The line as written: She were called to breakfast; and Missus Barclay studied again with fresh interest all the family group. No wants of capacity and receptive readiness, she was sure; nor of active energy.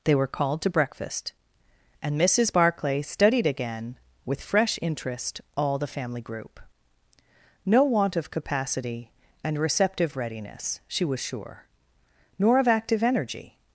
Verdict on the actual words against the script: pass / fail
fail